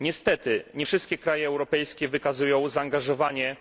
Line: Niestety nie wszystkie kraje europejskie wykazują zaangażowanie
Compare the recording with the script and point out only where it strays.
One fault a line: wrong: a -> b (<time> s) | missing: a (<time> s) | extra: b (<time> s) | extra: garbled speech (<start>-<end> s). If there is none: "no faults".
no faults